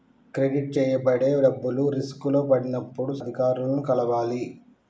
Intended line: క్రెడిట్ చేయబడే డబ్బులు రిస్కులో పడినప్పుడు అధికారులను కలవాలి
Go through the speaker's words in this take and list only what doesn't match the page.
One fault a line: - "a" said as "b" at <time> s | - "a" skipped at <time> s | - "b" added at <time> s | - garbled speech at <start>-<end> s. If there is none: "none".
none